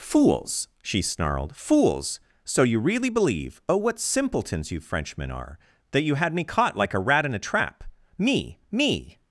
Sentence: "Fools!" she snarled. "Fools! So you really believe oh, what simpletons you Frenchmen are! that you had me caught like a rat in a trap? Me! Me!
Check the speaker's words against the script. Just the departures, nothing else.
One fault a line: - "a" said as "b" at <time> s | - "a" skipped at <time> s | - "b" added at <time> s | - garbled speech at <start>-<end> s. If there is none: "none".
none